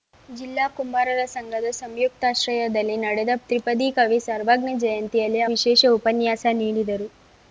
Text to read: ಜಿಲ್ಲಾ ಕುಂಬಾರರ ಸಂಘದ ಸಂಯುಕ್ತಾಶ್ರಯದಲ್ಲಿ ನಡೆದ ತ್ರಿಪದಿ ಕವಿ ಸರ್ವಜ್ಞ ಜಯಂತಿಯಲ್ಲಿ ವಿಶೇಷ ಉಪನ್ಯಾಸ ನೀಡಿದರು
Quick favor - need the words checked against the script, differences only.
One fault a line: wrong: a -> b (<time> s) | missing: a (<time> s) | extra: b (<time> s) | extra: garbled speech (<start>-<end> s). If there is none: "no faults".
no faults